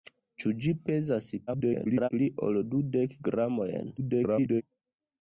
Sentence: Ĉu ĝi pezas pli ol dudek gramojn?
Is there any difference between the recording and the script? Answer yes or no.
yes